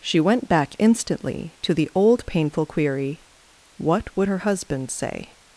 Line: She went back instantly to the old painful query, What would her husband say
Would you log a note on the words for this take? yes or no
no